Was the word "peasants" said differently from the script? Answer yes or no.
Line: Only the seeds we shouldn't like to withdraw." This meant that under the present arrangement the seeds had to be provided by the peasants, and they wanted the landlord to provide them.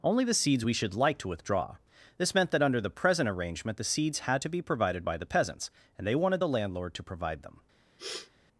no